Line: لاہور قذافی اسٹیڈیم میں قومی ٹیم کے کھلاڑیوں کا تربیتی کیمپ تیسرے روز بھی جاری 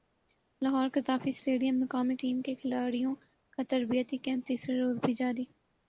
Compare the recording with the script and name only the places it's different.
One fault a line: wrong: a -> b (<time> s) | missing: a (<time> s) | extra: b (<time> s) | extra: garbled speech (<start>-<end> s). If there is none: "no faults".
no faults